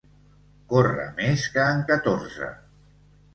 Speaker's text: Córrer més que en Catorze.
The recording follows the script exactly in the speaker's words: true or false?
true